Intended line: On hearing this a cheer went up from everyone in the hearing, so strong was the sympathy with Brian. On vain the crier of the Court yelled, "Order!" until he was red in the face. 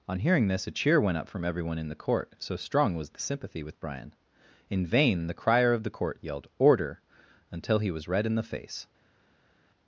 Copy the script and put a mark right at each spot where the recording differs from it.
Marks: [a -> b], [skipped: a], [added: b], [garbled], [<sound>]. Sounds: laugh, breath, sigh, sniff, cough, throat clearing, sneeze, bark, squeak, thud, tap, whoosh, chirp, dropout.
On hearing this a cheer went up from everyone in the [hearing, -> court] so strong was the sympathy with Brian. [On -> In] vain the crier of the Court yelled, "Order!" until he was red in the face.